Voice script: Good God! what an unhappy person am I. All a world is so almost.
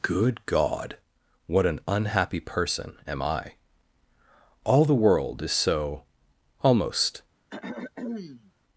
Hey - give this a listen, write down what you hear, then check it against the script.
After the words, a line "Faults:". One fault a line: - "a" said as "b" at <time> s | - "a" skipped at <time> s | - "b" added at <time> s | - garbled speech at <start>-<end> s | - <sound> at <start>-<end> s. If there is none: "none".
Good God! what an unhappy person am I. All the world is so almost.
Faults:
- "a" said as "the" at 4.8 s
- throat clearing at 7.5-8.5 s